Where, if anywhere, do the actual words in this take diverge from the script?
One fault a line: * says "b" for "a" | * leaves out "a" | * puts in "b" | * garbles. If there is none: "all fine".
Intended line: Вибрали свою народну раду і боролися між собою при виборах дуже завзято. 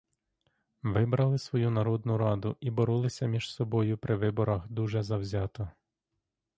all fine